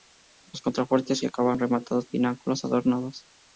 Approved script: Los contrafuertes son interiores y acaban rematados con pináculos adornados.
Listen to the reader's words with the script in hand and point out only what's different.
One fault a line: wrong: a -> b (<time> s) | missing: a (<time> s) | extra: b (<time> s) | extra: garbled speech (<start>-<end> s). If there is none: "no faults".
missing: son interiores (1.2 s)
missing: con (2.1 s)